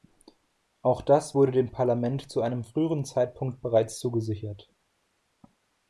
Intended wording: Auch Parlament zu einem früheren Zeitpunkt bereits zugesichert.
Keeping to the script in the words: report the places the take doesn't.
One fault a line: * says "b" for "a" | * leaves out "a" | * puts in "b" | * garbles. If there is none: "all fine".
* puts in "das wurde dem"